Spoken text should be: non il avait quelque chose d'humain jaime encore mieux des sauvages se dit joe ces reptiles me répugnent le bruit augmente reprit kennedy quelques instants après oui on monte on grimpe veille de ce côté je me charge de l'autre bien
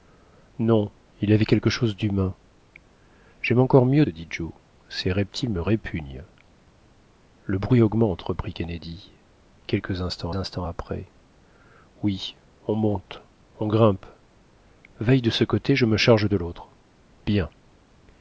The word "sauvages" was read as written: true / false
false